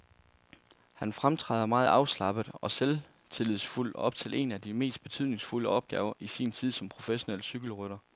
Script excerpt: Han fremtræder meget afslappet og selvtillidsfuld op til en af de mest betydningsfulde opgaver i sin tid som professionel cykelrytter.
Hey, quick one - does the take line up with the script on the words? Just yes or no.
yes